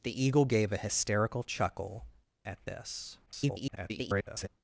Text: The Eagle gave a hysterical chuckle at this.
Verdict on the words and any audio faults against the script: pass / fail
fail